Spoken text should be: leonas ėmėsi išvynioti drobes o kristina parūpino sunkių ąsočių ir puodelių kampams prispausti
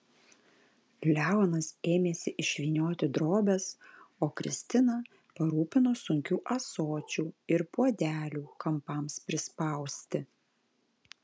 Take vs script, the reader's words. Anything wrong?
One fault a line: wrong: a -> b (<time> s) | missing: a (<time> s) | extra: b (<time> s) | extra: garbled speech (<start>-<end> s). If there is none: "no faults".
no faults